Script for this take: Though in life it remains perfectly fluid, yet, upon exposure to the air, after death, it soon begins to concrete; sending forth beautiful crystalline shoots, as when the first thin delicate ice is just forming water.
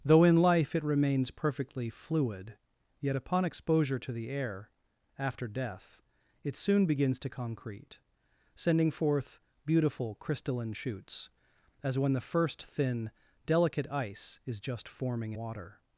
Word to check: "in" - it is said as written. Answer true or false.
true